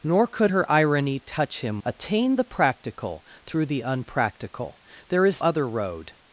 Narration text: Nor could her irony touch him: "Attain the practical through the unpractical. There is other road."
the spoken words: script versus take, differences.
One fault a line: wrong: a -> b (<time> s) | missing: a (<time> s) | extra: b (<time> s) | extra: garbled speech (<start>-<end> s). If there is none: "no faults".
no faults